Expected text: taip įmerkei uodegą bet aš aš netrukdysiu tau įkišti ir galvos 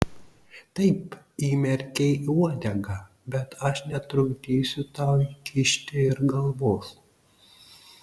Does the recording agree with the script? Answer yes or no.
no